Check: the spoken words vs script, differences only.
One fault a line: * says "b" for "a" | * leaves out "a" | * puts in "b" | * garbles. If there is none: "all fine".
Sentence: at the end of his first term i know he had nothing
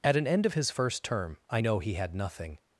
* says "an" for "the"